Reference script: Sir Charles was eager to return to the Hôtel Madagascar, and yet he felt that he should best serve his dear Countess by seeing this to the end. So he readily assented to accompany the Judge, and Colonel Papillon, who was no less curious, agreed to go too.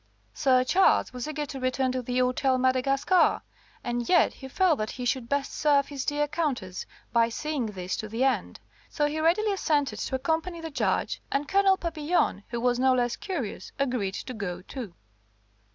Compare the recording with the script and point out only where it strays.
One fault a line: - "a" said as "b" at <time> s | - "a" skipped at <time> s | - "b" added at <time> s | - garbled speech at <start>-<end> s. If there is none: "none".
none